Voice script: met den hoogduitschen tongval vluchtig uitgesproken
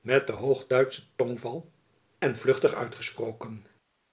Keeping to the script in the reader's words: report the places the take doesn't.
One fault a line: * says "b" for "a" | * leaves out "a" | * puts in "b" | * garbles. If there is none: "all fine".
* puts in "en"